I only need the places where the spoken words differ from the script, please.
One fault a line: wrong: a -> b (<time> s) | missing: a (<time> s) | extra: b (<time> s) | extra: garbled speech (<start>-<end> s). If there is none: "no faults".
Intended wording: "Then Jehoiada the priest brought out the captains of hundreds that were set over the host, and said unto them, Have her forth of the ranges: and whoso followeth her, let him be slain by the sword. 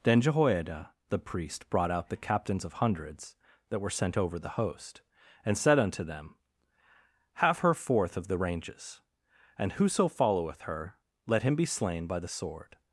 wrong: set -> sent (3.9 s)